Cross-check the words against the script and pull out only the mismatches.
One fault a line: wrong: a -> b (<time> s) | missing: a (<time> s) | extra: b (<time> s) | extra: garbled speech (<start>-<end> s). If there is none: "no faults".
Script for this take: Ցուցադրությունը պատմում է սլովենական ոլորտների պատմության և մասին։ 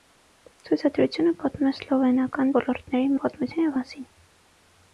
no faults